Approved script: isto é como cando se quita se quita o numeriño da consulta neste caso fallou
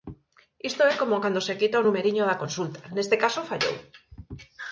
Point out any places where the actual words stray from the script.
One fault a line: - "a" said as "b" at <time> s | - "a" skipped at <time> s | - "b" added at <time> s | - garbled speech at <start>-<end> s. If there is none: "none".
- "se quita" skipped at 1.8 s